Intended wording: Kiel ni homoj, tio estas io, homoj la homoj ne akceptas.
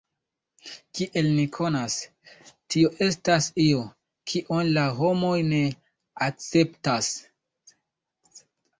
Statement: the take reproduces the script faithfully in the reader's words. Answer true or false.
false